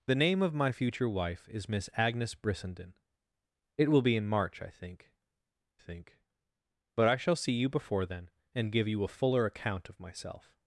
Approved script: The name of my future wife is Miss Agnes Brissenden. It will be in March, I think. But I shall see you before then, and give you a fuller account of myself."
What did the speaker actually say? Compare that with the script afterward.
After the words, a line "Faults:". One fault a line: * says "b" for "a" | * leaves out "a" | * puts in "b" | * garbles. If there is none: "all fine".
The name of my future wife is Miss Agnes Brissenden. It will be in March, I think think. But I shall see you before then, and give you a fuller account of myself."
Faults:
* puts in "think"